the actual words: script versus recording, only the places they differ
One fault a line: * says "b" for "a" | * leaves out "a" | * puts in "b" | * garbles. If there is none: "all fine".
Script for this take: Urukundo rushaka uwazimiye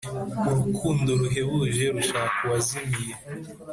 * puts in "ruhebuje"